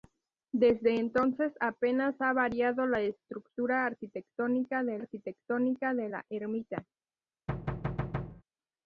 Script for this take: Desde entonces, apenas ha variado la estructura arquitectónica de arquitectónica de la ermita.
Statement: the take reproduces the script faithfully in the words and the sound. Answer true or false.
false